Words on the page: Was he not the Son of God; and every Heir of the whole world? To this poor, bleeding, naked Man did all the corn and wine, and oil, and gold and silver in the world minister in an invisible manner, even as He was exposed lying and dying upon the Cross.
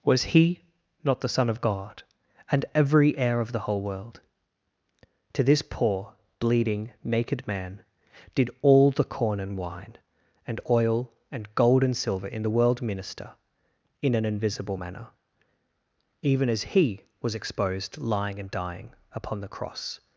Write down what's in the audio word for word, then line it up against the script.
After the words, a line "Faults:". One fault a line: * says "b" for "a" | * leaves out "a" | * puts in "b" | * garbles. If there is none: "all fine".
Was he not the Son of God; and every Heir of the whole world? To this poor, bleeding, naked Man did all the corn and wine, and oil, and gold and silver in the world minister in an invisible manner, even as He was exposed lying and dying upon the Cross.
Faults:
all fine